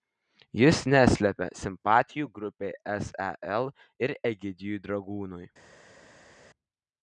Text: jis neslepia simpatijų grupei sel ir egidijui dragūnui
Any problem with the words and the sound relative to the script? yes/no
no